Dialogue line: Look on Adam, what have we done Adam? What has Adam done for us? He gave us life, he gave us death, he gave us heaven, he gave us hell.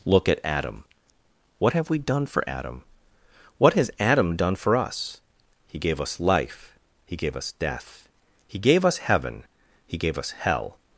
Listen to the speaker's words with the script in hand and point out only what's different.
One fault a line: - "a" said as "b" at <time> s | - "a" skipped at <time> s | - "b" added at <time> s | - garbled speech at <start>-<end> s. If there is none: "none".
- "on" said as "at" at 0.3 s
- "for" added at 2.2 s